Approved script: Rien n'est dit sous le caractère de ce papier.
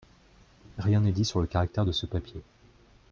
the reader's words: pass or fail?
fail